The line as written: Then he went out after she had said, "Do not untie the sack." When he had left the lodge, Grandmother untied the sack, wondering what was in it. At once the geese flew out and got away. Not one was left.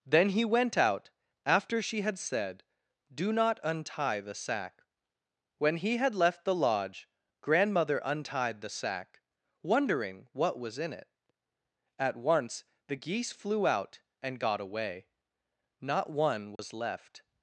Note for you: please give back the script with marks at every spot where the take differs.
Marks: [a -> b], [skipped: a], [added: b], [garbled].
Then he went out after she had said, "Do not untie the sack." When he had left the lodge, Grandmother untied the sack, wondering what was in it. At once the geese flew out and got away. Not one was left.